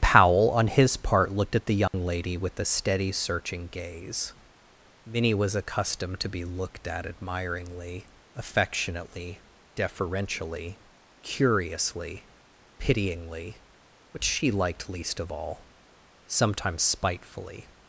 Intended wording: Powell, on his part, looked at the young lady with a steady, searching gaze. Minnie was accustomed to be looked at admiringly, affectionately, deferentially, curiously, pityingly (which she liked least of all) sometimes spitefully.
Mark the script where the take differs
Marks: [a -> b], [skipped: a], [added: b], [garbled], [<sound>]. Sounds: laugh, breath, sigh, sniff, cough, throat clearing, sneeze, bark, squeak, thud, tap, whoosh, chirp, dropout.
Powell, on his part, looked at the young [dropout] lady with a steady, searching gaze. Minnie was accustomed to be looked at admiringly, affectionately, deferentially, curiously, pityingly (which she liked least of all) sometimes spitefully.